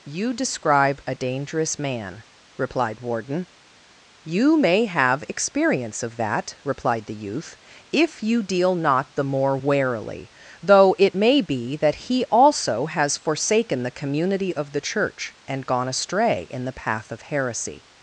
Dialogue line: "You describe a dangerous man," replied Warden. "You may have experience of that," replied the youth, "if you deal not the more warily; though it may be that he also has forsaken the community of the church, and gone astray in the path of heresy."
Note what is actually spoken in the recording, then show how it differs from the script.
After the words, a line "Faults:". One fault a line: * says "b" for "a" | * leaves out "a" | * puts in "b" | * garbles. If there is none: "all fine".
"You describe a dangerous man," replied Warden. "You may have experience of that," replied the youth, "if you deal not the more warily; though it may be that he also has forsaken the community of the church, and gone astray in the path of heresy."
Faults:
all fine